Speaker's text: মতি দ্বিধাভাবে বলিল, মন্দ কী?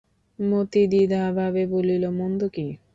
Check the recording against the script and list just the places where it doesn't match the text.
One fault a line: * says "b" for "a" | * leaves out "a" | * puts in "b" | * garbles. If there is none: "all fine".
all fine